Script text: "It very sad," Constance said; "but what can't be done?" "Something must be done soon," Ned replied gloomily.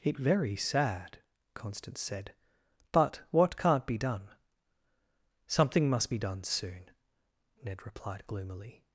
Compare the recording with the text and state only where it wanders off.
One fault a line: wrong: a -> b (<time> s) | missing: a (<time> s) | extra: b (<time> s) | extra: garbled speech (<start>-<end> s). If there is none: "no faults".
no faults